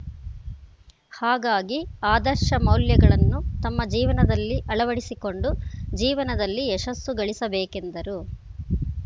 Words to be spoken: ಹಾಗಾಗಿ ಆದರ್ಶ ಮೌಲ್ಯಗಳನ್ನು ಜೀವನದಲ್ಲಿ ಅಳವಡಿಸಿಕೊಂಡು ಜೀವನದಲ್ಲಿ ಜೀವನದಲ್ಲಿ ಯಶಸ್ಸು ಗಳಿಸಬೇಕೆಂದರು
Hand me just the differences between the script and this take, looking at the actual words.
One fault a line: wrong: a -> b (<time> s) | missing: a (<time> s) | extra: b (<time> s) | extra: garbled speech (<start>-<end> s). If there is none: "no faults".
extra: ತಮ್ಮ (3.6 s)
missing: ಜೀವನದಲ್ಲಿ (6.7 s)